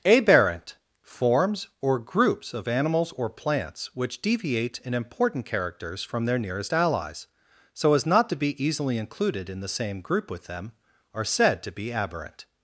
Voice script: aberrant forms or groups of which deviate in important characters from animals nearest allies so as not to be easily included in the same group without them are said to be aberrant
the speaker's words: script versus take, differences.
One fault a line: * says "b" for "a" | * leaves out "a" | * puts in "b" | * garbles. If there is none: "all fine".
* puts in "animals or plants"
* says "their" for "animals"
* says "with" for "without"